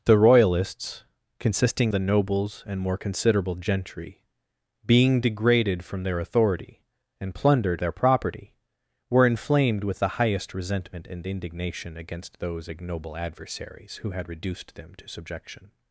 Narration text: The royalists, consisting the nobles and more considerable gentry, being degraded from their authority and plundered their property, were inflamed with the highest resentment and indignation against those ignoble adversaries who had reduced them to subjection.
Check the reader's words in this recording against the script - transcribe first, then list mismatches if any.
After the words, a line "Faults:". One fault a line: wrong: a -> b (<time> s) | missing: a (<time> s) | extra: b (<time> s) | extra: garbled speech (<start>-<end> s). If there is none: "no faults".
The royalists, consisting the nobles and more considerable gentry, being degraded from their authority and plundered their property, were inflamed with the highest resentment and indignation against those ignoble adversaries who had reduced them to subjection.
Faults:
no faults